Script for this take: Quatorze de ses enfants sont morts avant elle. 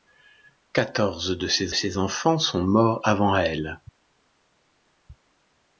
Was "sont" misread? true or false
false